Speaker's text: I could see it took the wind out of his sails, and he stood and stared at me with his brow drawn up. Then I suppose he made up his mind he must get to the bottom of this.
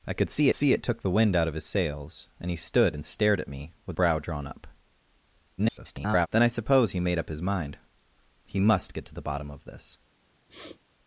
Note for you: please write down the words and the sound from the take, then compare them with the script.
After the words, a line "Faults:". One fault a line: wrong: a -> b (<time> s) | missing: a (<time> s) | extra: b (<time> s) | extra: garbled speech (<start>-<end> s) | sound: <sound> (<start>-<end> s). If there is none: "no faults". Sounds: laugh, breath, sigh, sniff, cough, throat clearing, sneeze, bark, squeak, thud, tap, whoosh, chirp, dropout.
I could see see it took the wind out of his sails, and he stood and stared at me with brow drawn up. [garbled] Then I suppose he made up his mind he must get to the bottom of this.
Faults:
extra: see (0.5 s)
missing: his (4.0 s)
extra: garbled speech (5.6-6.3 s)
sound: sniff (10.5-10.8 s)